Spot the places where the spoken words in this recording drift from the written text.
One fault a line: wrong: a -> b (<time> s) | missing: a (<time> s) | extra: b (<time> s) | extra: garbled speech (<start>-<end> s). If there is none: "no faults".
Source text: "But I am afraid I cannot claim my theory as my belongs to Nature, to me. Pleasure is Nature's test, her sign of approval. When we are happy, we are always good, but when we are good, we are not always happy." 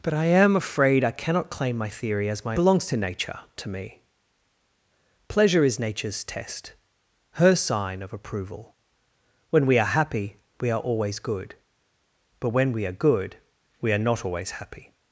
no faults